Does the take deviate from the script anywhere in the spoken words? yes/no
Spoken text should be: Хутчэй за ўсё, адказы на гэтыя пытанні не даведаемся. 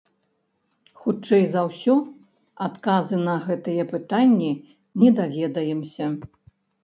no